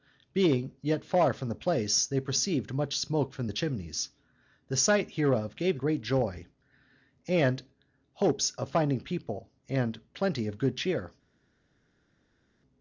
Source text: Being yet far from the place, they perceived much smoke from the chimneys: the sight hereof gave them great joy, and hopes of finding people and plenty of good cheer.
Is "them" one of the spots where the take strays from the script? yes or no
yes